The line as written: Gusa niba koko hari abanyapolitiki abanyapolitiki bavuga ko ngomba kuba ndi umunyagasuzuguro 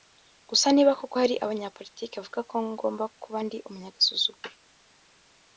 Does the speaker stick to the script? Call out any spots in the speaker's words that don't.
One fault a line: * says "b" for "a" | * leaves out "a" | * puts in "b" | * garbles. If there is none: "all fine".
* leaves out "abanyapolitiki"